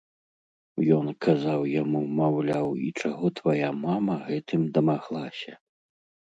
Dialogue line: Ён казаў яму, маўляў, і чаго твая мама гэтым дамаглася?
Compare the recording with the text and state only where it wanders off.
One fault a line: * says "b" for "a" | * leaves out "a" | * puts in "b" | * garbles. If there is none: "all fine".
all fine